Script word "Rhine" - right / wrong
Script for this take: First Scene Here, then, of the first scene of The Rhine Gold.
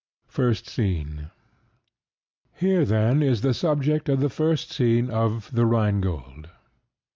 right